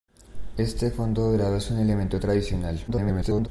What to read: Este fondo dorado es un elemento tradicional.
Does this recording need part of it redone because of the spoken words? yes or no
yes